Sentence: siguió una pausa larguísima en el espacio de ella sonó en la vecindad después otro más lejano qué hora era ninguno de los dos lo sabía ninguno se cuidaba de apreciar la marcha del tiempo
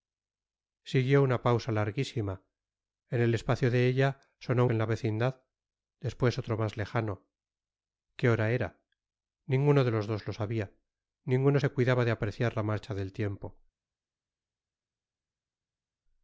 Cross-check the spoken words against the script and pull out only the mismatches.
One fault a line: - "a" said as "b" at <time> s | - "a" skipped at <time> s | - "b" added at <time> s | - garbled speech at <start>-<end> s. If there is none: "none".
none